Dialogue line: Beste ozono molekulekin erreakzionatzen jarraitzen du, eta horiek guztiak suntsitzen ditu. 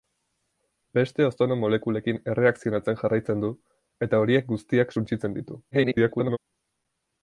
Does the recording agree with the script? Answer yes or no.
no